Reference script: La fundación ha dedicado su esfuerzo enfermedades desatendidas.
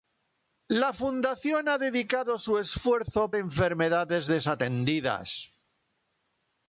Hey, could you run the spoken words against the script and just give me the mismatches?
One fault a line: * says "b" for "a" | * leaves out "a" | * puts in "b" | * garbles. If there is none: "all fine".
all fine